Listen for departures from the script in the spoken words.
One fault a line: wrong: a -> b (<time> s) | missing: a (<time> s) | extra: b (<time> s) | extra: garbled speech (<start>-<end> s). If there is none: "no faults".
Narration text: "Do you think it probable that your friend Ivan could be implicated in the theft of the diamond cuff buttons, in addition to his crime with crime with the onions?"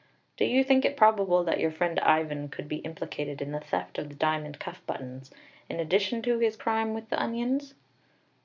missing: crime with (7.1 s)